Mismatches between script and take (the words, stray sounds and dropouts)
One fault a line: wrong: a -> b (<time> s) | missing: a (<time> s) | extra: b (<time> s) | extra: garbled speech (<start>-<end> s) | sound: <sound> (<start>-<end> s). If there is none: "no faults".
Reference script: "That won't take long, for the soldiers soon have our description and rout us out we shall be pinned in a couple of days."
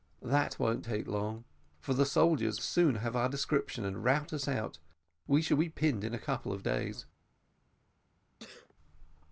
sound: sneeze (8.4-8.7 s)